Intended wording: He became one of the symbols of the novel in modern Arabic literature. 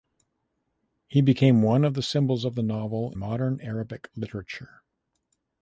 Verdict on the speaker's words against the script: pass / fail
fail